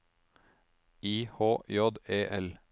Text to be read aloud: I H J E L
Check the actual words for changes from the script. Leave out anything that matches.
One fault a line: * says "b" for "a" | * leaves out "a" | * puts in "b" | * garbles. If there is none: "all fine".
all fine